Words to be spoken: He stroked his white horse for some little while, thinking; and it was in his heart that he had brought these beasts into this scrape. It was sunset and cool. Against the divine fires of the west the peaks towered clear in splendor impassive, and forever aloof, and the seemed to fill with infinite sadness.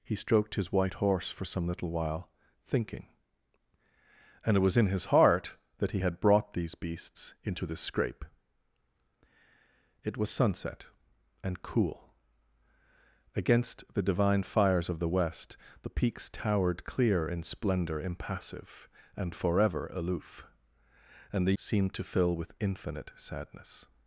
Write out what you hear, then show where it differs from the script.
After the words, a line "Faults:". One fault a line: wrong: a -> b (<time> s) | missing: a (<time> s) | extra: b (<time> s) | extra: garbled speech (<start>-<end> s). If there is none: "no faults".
He stroked his white horse for some little while, thinking; and it was in his heart that he had brought these beasts into this scrape. It was sunset and cool. Against the divine fires of the west the peaks towered clear in splendor impassive, and forever aloof, and the seemed to fill with infinite sadness.
Faults:
no faults